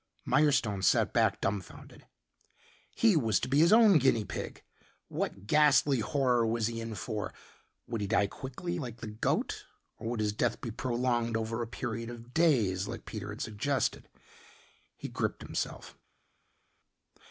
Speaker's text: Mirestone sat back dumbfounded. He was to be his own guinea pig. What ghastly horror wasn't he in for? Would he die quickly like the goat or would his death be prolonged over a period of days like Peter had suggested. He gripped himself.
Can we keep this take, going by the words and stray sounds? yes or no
no